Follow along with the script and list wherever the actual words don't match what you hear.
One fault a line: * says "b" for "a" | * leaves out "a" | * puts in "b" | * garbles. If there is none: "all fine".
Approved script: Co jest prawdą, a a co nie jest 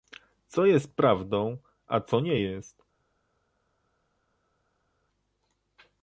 * leaves out "a"